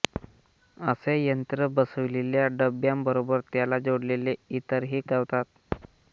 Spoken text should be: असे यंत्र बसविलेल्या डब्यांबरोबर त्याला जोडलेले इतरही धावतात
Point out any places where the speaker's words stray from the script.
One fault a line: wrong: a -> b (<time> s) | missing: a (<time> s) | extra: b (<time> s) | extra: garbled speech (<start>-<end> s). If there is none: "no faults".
no faults